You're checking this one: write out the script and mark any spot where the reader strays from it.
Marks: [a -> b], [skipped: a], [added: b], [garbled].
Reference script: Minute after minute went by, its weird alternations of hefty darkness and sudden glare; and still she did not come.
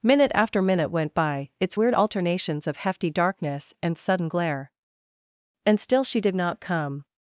Minute after minute went by, its weird alternations of hefty darkness and sudden glare; and still she did not come.